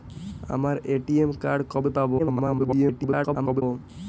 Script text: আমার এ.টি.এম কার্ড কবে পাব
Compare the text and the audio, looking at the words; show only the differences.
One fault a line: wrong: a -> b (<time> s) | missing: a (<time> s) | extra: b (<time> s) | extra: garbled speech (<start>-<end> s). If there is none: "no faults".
extra: garbled speech (2.2-3.6 s)